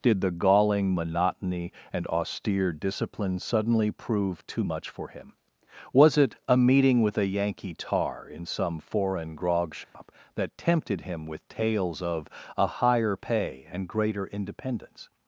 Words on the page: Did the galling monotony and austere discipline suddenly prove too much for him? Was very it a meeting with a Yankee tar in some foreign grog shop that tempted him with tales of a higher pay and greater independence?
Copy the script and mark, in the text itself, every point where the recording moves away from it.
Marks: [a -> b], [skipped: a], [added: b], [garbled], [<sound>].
Did the galling monotony and austere discipline suddenly prove too much for him? Was [skipped: very] it a meeting with a Yankee tar in some foreign grog shop [dropout] that tempted him with tales of a higher pay and greater independence?